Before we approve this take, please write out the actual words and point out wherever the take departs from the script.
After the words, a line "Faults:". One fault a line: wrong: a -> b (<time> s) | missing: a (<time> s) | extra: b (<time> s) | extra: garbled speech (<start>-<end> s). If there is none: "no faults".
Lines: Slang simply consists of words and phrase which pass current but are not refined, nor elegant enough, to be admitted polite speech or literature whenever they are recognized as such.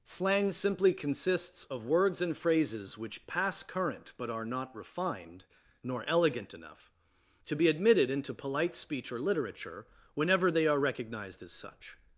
Slang simply consists of words and phrases which pass current but are not refined, nor elegant enough, to be admitted into polite speech or literature whenever they are recognized as such.
Faults:
wrong: phrase -> phrases (2.4 s)
extra: into (8.1 s)